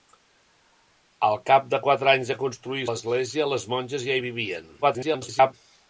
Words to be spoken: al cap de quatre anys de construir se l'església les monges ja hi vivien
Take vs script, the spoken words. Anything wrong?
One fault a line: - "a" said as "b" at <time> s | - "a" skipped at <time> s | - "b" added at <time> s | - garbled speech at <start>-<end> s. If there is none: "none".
- "se" skipped at 2.9 s
- garbled speech at 4.8-5.5 s